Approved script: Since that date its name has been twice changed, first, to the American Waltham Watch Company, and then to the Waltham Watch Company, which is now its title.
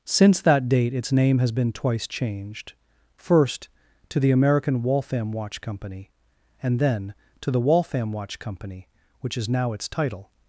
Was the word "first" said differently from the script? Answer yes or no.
no